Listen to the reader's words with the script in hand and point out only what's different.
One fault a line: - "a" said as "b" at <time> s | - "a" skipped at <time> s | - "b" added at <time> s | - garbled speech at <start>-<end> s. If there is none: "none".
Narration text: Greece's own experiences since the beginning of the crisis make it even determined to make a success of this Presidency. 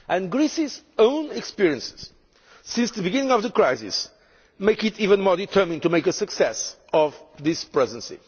- "more" added at 5.2 s